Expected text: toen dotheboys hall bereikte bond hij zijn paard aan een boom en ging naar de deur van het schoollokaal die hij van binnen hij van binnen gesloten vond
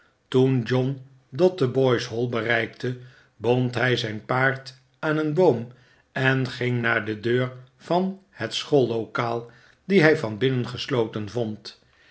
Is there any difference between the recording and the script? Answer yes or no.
yes